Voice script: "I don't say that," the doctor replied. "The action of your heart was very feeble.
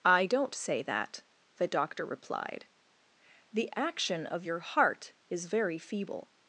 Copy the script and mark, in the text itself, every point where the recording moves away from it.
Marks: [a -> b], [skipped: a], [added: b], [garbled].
"I don't say that," the doctor replied. "The action of your heart [was -> is] very feeble.